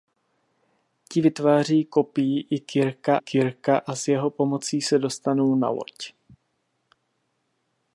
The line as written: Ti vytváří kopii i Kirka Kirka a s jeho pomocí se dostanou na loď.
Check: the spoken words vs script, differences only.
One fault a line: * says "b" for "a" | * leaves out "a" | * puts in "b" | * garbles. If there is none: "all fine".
all fine